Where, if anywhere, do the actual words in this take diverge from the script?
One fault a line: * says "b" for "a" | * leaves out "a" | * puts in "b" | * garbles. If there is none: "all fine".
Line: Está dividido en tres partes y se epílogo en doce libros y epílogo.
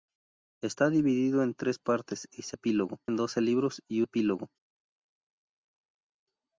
all fine